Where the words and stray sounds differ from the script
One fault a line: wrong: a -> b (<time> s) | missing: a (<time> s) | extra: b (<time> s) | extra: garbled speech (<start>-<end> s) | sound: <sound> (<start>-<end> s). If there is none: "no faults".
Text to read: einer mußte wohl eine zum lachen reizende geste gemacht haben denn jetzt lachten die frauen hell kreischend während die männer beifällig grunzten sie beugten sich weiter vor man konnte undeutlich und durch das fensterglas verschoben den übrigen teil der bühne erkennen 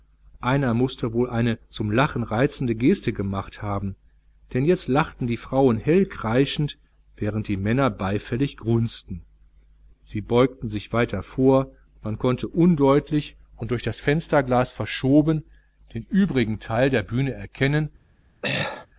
sound: throat clearing (18.4-18.9 s)